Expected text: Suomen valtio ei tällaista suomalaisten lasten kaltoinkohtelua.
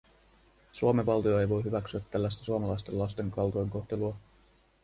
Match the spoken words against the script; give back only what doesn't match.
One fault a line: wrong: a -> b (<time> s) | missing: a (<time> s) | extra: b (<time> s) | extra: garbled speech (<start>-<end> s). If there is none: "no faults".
extra: voi hyväksyä (1.5 s)